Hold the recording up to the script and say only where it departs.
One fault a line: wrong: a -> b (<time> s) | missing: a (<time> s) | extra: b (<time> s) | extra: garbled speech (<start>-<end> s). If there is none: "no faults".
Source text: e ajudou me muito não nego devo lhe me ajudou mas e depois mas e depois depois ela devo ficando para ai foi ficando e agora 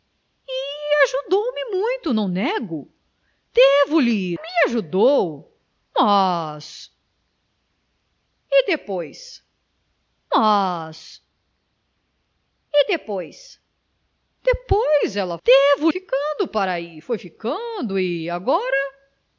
no faults